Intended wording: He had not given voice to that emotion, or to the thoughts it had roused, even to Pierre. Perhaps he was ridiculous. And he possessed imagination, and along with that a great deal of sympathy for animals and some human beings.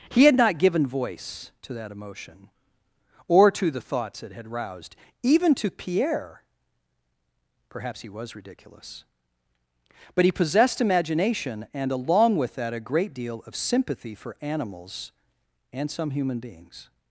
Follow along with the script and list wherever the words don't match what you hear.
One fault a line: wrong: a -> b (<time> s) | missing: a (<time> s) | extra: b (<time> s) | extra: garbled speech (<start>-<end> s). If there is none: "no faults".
wrong: And -> But (10.1 s)